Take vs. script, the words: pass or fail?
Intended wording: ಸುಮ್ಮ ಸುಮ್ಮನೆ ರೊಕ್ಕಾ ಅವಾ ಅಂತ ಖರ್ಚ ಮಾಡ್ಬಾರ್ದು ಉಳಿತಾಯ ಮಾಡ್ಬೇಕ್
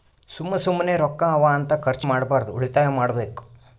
pass